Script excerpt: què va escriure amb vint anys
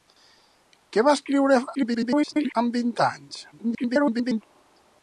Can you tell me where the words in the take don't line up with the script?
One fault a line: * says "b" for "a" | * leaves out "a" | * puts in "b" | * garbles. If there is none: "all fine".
* garbles
* garbles